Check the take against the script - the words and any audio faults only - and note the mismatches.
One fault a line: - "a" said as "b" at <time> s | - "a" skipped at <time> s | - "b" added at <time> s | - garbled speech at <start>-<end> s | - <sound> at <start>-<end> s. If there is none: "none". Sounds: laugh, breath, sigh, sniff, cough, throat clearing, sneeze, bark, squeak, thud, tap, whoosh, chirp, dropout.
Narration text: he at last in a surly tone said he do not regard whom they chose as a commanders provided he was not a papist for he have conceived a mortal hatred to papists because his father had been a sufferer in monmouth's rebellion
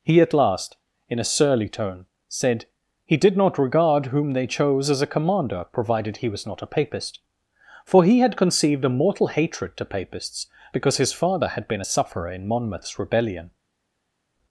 - "do" said as "did" at 3.2 s
- "commanders" said as "commander" at 5.1 s
- "have" said as "had" at 8.2 s